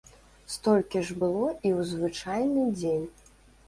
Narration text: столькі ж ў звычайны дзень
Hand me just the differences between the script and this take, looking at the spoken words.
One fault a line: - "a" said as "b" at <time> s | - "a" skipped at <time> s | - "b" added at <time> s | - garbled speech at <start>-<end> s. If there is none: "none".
- "было і" added at 1.2 s